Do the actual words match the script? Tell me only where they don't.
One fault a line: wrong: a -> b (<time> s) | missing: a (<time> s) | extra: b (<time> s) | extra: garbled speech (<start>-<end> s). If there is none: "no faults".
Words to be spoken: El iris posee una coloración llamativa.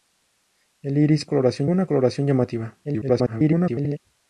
wrong: posee -> coloración (1.3 s)
extra: garbled speech (2.8-4.0 s)